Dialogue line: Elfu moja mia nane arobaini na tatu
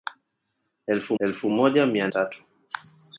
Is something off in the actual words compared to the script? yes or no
yes